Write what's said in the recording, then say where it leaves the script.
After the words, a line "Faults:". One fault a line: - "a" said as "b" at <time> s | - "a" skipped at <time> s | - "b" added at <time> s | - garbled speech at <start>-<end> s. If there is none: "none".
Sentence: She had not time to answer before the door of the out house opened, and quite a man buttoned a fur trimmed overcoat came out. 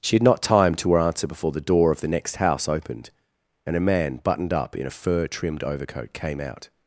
She had not time to answer before the door of the next house opened, and a man buttoned up in a fur trimmed overcoat came out.
Faults:
- "out" said as "next" at 2.1 s
- "quite" skipped at 3.8 s
- "up in" added at 4.5 s